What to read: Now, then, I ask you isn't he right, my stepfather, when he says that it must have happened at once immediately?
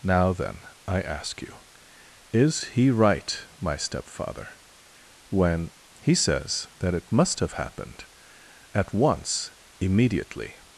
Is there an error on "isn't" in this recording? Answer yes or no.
yes